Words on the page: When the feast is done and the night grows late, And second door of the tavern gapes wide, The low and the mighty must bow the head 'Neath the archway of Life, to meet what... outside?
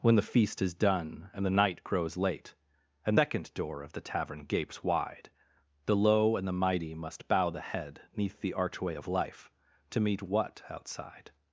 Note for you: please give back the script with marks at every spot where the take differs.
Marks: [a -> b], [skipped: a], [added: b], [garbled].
When the feast is done and the night grows late, And second door of the tavern gapes wide, The low and the mighty must bow the head 'Neath the archway of Life, to meet what... outside?